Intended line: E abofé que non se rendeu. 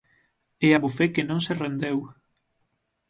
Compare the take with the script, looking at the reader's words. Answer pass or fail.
pass